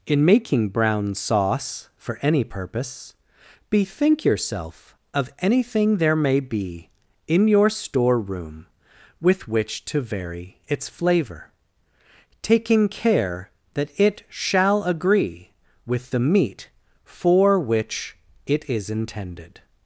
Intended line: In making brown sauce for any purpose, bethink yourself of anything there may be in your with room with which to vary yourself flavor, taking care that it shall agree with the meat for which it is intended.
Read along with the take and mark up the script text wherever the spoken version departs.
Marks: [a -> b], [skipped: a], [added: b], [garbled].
In making brown sauce for any purpose, bethink yourself of anything there may be in your [with -> store] room with which to vary [yourself -> its] flavor, taking care that it shall agree with the meat for which it is intended.